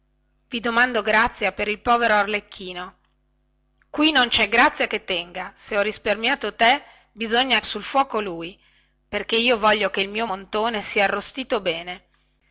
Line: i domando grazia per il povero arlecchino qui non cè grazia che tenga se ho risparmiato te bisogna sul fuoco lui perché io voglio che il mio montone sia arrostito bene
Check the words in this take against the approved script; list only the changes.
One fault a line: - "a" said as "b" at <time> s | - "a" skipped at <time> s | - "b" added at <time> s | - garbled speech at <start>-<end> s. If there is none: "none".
none